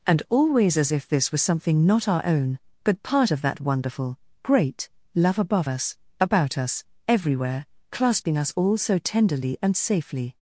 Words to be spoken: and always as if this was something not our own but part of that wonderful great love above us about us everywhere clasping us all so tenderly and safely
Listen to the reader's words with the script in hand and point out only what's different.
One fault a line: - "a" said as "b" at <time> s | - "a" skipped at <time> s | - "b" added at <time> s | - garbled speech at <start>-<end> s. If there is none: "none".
none